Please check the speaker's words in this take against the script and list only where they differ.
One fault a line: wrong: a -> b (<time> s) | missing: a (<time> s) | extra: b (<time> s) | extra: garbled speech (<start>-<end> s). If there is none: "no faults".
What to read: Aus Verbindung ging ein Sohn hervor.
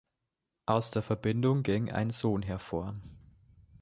extra: der (0.9 s)